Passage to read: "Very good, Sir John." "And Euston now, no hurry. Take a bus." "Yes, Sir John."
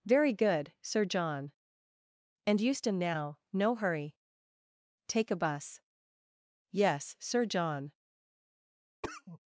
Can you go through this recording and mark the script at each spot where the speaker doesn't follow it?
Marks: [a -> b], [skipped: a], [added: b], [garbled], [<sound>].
"Very good, Sir John." "And Euston now, no hurry. Take a bus." "Yes, Sir John." [cough]